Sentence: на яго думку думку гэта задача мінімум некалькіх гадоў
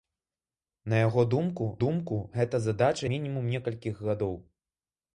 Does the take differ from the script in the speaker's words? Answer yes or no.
no